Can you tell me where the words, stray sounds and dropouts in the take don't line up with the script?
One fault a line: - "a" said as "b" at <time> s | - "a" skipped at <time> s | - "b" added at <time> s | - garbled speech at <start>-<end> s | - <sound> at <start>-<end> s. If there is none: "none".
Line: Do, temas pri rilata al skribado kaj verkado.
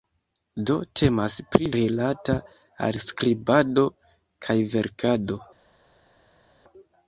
none